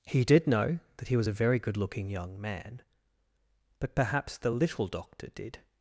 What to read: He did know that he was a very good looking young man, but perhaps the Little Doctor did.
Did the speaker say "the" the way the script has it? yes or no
yes